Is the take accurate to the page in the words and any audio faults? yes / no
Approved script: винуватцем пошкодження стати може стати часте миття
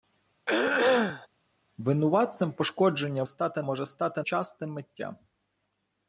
no